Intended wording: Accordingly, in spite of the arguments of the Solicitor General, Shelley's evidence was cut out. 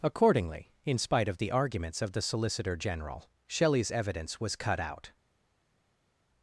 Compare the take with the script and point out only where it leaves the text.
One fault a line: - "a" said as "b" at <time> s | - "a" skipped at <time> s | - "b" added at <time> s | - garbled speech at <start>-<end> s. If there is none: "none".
none